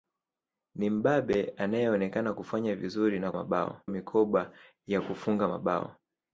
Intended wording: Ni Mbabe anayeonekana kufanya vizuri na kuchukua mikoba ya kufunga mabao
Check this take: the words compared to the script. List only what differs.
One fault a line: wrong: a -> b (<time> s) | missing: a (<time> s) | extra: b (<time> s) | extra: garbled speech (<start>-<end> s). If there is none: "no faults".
wrong: kuchukua -> mabao (3.3 s)